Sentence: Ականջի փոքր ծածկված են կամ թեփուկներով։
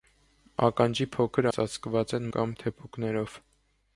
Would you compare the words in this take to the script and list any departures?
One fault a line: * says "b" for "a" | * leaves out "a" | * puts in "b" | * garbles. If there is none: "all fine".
all fine